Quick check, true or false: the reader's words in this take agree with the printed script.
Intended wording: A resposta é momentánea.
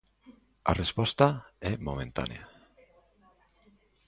true